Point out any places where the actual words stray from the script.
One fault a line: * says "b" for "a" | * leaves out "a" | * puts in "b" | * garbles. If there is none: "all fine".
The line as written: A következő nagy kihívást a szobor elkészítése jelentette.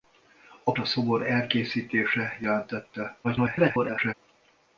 * leaves out "következő nagy kihívást"
* garbles